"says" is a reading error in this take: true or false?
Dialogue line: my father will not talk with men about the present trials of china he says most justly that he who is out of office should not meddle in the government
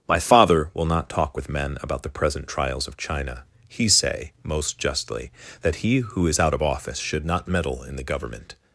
true